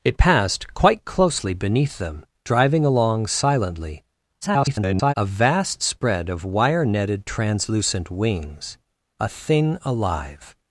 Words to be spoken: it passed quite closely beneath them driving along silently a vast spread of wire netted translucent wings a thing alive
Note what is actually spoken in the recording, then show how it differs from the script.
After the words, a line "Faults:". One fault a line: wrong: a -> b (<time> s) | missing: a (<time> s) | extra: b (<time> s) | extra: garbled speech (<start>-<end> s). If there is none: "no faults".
it passed quite closely beneath them driving along silently [garbled] a vast spread of wire netted translucent wings a thing alive
Faults:
extra: garbled speech (4.4-5.1 s)